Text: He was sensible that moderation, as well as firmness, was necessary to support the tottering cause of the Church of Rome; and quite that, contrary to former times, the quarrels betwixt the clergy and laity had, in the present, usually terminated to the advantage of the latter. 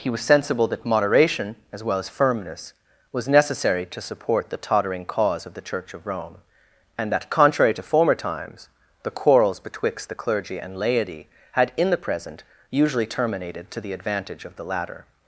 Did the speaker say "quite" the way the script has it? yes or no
no